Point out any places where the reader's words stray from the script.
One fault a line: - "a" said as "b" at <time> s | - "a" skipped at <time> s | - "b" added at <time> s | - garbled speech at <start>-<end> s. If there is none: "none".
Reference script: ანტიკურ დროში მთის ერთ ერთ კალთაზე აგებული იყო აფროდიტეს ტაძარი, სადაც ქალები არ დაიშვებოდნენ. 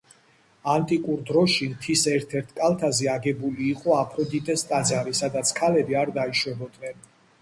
none